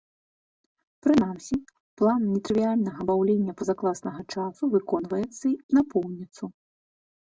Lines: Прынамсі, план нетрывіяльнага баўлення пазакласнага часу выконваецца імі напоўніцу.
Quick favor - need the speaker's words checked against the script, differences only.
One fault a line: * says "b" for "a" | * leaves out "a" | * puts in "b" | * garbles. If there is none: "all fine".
* leaves out "імі"